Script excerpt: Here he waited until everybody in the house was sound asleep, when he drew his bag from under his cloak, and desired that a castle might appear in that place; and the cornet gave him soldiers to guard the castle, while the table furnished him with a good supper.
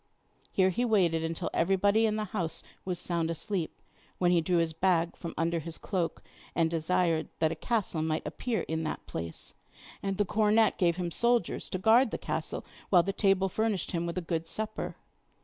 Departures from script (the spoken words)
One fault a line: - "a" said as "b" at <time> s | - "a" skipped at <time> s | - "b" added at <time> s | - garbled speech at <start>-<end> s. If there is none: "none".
none